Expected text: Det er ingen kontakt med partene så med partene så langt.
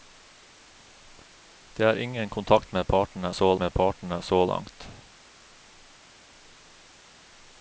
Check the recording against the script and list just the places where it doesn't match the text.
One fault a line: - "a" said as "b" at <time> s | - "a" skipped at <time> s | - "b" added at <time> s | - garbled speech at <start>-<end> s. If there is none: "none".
none